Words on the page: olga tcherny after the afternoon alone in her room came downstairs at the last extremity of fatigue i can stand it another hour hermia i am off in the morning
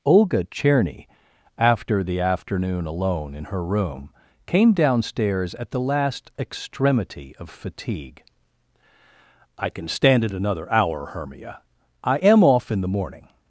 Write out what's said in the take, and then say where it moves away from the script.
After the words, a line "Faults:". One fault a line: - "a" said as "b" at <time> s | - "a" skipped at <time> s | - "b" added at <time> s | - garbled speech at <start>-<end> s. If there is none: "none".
olga tcherny after the afternoon alone in her room came downstairs at the last extremity of fatigue i can stand it another hour hermia i am off in the morning
Faults:
none